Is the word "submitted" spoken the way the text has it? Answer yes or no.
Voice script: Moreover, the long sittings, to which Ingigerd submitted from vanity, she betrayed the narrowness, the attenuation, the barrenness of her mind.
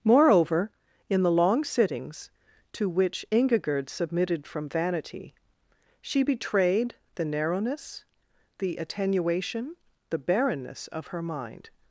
yes